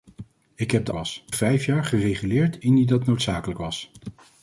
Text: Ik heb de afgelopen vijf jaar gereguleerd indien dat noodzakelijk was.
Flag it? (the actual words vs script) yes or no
yes